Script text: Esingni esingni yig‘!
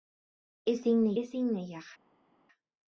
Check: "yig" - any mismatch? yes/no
no